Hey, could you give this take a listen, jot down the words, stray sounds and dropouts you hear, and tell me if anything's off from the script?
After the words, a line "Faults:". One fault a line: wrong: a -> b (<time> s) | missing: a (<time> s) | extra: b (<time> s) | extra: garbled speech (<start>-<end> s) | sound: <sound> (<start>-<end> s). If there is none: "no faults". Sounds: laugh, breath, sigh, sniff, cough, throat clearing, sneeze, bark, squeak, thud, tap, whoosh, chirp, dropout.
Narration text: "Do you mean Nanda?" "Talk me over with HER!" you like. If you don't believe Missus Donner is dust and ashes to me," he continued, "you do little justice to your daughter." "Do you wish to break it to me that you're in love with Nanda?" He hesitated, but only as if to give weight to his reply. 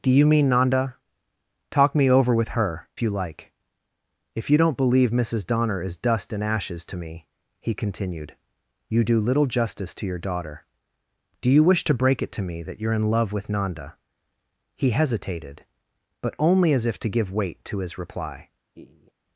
"Do you mean Nanda?" "Talk me over with HER!" you like. If you don't believe Missus Donner is dust and ashes to me," he continued, "you do little justice to your daughter." "Do you wish to break it to me that you're in love with Nanda?" He hesitated, but only as if to give weight to his reply.
Faults:
sound: laugh (18.7-19.1 s)